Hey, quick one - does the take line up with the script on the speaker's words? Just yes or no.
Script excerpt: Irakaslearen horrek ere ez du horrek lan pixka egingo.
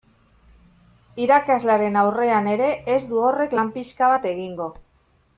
no